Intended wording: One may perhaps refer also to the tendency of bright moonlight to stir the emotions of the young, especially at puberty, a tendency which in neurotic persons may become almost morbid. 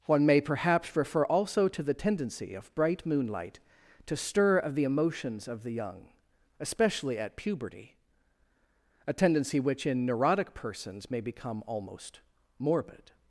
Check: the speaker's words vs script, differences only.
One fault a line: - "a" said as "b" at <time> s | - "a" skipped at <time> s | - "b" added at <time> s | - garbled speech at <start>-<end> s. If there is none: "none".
- "of" added at 4.6 s